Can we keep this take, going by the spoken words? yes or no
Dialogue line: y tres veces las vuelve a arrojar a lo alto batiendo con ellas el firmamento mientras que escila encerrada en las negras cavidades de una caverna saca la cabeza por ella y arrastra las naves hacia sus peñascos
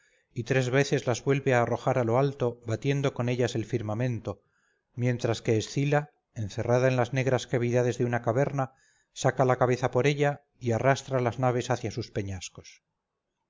yes